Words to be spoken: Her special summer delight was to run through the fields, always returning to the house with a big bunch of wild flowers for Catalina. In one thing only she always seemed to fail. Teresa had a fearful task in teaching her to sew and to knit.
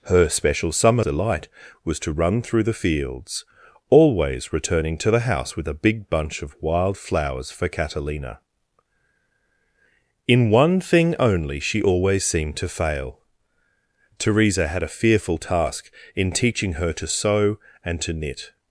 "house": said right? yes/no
yes